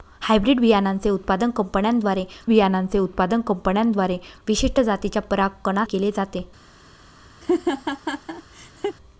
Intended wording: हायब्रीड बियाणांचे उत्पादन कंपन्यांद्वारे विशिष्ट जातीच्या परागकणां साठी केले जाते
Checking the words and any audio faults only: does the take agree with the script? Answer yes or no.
no